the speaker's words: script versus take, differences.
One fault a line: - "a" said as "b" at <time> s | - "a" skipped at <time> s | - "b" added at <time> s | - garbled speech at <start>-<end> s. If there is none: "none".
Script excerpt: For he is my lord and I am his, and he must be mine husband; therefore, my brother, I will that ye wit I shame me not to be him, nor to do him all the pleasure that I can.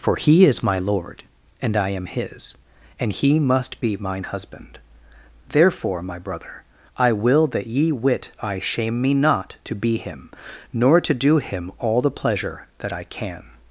none